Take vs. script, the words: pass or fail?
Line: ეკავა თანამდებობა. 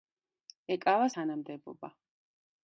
pass